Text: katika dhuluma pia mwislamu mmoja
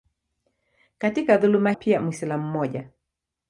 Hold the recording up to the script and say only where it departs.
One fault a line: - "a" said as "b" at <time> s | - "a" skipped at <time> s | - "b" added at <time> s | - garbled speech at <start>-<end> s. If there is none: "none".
none